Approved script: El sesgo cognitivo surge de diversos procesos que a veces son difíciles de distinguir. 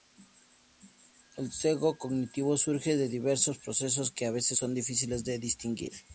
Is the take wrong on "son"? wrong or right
right